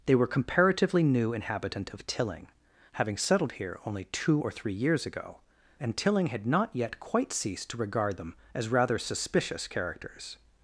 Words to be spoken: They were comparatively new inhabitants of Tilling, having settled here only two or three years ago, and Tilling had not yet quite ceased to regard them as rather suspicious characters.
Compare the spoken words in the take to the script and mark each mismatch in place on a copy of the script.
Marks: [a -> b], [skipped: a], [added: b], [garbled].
They were comparatively new [inhabitants -> inhabitant] of Tilling, having settled here only two or three years ago, and Tilling had not yet quite ceased to regard them as rather suspicious characters.